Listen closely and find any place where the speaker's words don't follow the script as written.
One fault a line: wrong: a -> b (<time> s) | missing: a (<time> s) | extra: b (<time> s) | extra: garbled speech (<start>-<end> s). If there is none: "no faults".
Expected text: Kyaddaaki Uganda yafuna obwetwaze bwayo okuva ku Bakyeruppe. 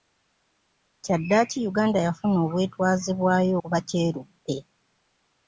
missing: okuva (3.5 s)